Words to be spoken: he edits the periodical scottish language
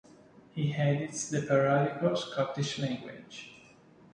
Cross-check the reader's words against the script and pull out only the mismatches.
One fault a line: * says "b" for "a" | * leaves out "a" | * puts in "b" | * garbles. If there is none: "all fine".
all fine